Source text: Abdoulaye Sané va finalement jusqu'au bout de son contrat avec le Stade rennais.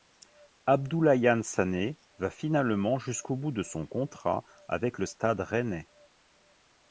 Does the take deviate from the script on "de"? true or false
false